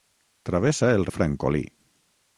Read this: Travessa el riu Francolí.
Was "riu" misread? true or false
true